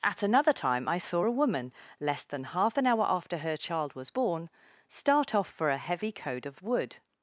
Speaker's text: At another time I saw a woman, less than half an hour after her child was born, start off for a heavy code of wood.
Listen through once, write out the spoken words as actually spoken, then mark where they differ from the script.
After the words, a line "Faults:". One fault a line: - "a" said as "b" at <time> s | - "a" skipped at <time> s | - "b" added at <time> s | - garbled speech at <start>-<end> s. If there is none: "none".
At another time I saw a woman, less than half an hour after her child was born, start off for a heavy code of wood.
Faults:
none